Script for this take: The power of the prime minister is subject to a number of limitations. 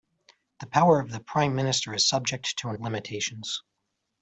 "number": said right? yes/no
no